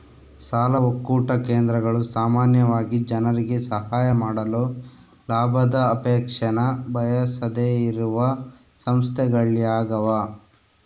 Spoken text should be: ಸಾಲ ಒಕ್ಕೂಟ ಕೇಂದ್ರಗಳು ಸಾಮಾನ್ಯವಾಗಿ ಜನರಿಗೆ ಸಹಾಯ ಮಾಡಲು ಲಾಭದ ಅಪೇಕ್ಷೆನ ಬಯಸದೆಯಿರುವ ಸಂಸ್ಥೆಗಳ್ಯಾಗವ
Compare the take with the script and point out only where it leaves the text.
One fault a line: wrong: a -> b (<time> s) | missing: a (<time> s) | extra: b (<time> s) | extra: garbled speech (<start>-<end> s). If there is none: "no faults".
no faults